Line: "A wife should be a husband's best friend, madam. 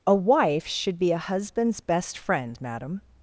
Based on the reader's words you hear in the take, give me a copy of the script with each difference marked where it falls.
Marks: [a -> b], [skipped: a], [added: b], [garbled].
"A wife should be a husband's best friend, madam.